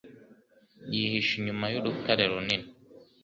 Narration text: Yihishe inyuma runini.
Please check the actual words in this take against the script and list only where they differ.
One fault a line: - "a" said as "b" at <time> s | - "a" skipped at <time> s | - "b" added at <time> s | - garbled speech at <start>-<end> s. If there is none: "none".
- "y'urutare" added at 1.7 s